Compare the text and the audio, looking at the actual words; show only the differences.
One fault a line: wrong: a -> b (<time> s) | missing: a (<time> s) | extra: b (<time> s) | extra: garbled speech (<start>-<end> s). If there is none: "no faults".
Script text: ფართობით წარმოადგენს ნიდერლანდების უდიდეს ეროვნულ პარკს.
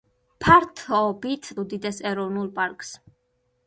missing: წარმოადგენს ნიდერლანდების (1.5 s)